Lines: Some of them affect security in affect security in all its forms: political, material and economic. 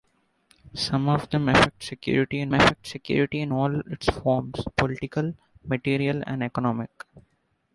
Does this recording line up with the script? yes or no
yes